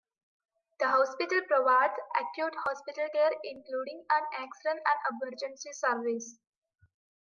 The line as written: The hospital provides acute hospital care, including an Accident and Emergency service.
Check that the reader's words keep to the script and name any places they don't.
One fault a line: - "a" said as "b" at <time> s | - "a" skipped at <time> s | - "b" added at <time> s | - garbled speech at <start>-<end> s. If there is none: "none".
none